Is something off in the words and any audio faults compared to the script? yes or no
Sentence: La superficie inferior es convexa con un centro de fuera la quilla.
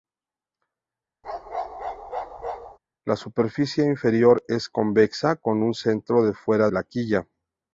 yes